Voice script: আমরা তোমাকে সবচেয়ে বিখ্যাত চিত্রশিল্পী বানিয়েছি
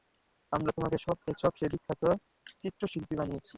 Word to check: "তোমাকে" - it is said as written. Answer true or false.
true